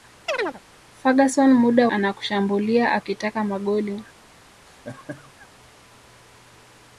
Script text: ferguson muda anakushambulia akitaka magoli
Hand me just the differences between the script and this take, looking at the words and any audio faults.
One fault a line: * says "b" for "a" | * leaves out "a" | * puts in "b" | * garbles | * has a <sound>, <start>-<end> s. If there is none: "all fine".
* has a chirp, 0.3-0.6 s
* has a laugh, 4.7-5.5 s